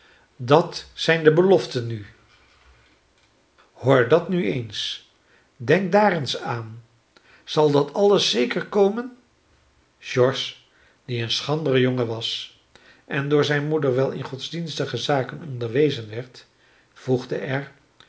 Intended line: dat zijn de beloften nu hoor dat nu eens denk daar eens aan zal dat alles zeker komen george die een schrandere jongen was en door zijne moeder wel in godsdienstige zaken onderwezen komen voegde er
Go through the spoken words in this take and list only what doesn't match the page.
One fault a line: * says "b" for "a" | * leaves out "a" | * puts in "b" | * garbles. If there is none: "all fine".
* says "werd" for "komen"